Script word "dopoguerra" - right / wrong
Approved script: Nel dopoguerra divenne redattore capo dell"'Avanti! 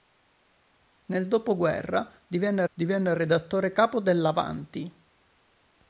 right